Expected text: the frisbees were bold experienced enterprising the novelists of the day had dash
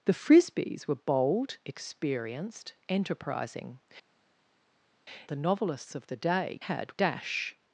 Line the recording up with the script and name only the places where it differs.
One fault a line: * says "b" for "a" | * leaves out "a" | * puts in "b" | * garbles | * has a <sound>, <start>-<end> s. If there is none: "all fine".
all fine